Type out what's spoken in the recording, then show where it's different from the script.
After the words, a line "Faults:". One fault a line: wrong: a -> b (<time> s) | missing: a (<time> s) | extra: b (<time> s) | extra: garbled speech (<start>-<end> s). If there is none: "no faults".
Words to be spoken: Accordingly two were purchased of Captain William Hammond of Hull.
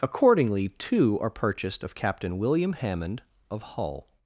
Accordingly two are purchased of Captain William Hammond of Hull.
Faults:
wrong: were -> are (1.2 s)